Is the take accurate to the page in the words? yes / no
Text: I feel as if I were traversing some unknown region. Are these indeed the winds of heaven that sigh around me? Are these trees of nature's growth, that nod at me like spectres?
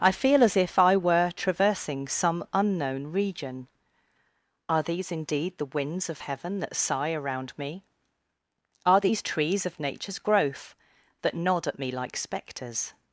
yes